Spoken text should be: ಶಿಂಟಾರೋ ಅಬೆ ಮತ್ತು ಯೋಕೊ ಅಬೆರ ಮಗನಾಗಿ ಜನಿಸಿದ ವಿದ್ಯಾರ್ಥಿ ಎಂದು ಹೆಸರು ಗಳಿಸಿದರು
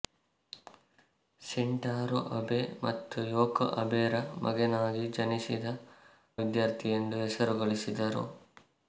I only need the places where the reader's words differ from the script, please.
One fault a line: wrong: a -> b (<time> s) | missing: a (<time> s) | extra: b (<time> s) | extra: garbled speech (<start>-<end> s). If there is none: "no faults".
no faults